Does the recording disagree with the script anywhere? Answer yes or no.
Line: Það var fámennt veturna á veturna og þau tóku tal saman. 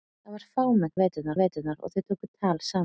no